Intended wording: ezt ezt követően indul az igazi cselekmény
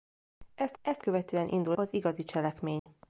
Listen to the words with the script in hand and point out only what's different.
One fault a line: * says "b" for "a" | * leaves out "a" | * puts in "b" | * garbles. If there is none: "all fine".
all fine